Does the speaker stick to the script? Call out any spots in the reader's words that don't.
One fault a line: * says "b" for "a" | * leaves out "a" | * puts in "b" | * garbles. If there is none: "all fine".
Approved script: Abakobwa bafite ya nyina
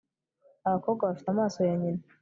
* puts in "amaso"